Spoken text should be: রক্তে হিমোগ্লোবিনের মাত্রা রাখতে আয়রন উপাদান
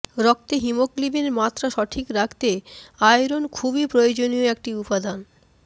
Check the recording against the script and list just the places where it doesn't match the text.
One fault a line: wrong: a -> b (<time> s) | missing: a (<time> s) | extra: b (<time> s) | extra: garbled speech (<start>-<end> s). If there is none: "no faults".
extra: সঠিক (1.7 s)
extra: খুবই প্রয়োজনীয় একটি (3.5 s)